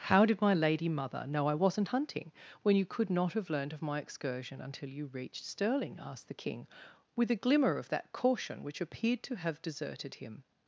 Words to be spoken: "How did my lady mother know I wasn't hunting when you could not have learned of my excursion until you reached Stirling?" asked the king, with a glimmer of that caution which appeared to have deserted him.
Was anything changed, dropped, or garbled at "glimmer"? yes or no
no